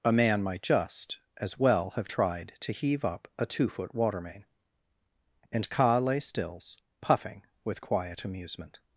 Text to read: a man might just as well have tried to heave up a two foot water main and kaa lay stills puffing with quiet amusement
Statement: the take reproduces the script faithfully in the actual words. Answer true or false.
true